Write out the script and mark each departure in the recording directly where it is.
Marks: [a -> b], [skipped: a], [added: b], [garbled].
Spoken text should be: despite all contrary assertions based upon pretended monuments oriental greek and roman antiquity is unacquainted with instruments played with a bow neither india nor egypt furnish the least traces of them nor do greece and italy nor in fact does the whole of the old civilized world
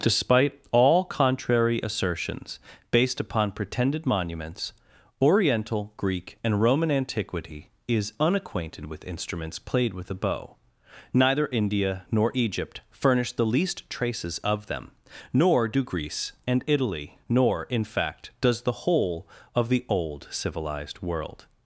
despite all contrary assertions based upon pretended monuments oriental greek and roman antiquity is unacquainted with instruments played with a bow neither india nor egypt furnish the least traces of them nor do greece and italy nor in fact does the whole of the old civilized world